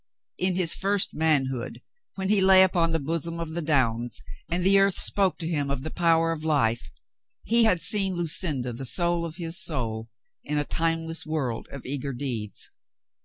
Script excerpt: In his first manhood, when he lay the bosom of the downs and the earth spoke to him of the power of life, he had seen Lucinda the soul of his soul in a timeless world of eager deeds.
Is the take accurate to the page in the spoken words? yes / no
no